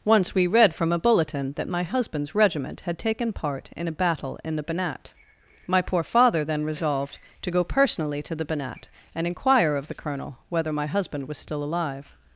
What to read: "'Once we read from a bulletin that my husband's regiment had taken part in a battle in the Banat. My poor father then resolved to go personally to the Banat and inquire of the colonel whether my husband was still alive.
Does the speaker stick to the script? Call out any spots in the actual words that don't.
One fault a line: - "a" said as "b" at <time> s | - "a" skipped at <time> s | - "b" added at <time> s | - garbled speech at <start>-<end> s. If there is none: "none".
none